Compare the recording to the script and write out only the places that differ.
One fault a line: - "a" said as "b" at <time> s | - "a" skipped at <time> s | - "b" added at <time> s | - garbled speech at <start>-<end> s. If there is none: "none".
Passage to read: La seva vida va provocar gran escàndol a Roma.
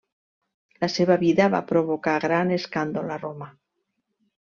none